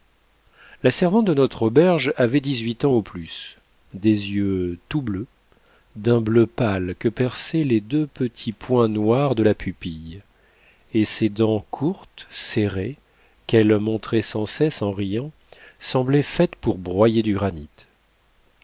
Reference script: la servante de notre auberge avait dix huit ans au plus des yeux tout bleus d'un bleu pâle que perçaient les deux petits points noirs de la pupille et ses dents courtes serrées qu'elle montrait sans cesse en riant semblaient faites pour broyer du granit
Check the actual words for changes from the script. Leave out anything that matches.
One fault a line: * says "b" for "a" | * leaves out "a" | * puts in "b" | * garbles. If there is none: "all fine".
all fine